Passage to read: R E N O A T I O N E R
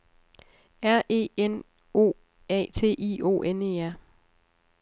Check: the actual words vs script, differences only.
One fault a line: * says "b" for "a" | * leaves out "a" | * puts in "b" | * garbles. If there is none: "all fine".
all fine